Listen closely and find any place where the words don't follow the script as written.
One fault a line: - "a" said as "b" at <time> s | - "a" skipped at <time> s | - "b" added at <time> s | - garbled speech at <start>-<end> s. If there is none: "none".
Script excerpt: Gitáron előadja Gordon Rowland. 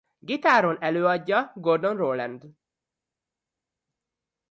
none